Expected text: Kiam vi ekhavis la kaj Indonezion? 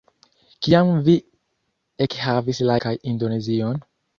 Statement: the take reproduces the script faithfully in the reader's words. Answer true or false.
true